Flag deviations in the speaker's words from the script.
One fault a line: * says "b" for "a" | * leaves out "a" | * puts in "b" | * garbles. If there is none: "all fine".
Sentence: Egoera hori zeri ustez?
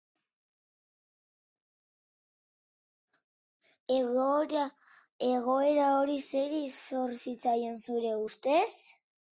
* puts in "zor zitzaion zure"